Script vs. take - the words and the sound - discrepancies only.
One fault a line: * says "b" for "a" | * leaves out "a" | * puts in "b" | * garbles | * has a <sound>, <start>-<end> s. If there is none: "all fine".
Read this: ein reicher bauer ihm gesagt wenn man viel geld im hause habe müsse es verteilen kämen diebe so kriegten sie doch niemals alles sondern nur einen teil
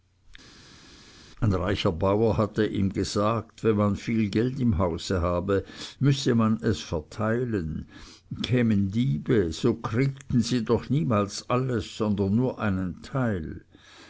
* puts in "hatte"
* puts in "man"